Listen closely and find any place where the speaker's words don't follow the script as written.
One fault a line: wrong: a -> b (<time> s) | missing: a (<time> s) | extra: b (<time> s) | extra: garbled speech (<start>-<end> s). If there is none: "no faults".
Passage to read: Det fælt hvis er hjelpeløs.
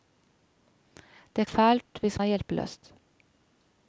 no faults